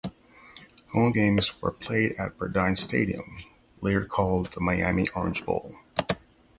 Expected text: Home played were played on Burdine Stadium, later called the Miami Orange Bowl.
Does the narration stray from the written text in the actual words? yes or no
yes